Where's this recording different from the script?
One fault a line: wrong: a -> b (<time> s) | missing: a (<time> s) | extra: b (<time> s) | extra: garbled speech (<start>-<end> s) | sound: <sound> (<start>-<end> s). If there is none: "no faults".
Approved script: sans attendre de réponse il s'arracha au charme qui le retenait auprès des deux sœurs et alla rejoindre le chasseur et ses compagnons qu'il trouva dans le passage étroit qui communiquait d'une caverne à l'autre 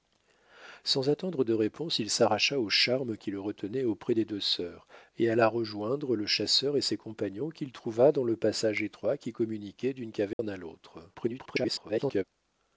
sound: dropout (10.3-10.4 s)
extra: garbled speech (11.1-12.2 s)